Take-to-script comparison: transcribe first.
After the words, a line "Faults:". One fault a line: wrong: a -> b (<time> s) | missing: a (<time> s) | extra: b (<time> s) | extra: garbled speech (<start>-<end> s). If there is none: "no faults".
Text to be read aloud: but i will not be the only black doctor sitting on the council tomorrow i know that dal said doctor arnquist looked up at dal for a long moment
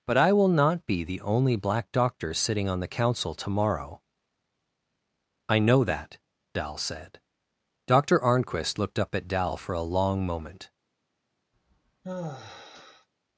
but i will not be the only black doctor sitting on the council tomorrow i know that dal said doctor arnquist looked up at dal for a long moment
Faults:
no faults